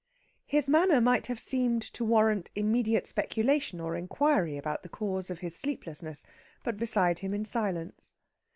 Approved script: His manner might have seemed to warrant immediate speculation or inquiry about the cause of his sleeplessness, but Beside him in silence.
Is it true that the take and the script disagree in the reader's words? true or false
false